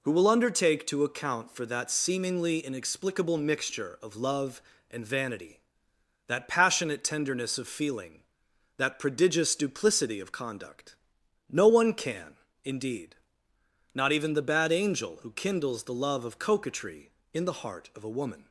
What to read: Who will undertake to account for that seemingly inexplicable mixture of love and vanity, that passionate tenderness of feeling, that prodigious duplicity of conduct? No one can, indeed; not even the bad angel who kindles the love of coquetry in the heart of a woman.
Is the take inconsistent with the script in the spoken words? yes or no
no